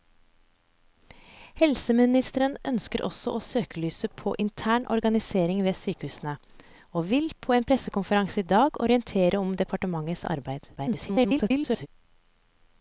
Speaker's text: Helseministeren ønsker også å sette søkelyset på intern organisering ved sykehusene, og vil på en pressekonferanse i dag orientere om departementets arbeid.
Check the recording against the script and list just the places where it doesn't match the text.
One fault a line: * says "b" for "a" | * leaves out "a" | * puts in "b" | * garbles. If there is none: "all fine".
* leaves out "sette"
* garbles